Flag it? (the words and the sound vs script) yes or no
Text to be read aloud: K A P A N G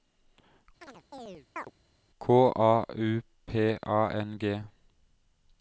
yes